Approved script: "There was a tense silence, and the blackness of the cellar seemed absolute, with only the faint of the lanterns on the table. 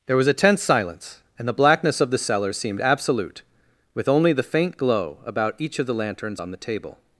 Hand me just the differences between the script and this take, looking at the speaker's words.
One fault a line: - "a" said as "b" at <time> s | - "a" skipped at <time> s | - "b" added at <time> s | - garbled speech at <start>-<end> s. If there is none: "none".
- "glow about each" added at 4.8 s